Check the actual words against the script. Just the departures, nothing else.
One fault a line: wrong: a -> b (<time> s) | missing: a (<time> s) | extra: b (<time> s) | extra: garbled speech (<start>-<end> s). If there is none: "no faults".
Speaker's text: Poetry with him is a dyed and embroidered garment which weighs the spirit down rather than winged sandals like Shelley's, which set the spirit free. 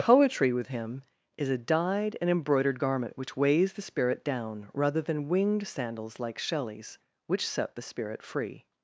no faults